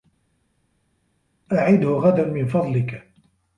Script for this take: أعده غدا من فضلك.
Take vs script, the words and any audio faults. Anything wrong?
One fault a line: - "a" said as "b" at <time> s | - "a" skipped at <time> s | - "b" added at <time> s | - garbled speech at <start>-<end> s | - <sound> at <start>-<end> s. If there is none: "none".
none